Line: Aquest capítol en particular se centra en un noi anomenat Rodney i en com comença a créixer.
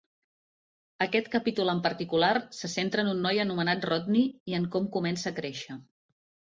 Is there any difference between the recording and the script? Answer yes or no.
no